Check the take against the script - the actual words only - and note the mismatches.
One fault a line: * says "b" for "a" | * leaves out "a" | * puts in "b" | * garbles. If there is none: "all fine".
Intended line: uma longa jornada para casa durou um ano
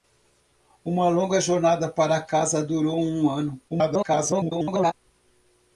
* garbles